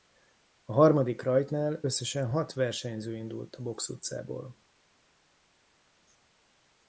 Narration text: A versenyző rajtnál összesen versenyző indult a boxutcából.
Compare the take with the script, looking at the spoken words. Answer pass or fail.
fail